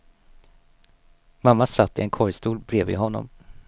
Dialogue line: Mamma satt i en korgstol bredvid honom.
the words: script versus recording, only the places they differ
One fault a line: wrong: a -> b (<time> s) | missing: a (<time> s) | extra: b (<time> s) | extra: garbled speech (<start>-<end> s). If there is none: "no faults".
no faults